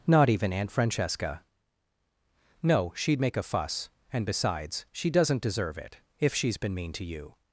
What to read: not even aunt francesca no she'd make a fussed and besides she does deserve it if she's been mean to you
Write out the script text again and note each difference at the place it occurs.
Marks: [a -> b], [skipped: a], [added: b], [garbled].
not even aunt francesca no she'd make a [fussed -> fuss] and besides she [does -> doesn't] deserve it if she's been mean to you